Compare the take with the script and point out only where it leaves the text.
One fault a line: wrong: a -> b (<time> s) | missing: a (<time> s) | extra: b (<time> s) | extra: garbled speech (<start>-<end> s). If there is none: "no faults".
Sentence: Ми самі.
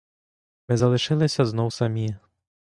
extra: залишилися знов (0.7 s)